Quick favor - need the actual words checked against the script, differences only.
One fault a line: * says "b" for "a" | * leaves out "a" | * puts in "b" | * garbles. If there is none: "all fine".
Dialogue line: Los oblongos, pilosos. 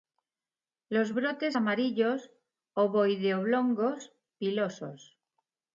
* puts in "brotes amarillos ovoide"